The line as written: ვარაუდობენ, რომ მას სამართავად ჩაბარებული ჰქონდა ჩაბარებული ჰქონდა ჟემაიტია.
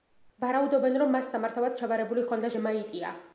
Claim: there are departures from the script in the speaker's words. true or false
true